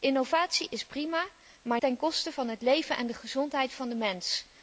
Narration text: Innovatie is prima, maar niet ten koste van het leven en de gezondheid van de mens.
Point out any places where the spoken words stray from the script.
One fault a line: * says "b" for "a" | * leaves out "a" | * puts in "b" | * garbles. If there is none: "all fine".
* leaves out "niet"